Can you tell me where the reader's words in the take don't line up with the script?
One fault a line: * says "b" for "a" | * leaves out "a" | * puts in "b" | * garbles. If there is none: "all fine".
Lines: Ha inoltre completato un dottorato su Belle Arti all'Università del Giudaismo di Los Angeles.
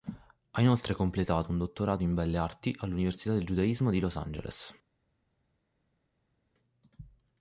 * says "in" for "su"